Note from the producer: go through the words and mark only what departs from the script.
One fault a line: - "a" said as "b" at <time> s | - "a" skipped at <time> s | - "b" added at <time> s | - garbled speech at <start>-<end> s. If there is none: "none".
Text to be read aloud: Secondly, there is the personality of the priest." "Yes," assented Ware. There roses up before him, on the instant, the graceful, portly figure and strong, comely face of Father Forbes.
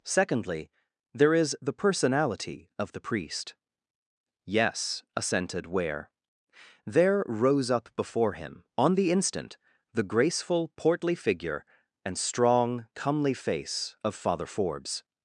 - "roses" said as "rose" at 7.3 s